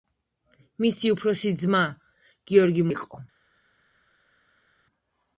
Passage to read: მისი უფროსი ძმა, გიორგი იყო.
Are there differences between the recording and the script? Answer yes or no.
no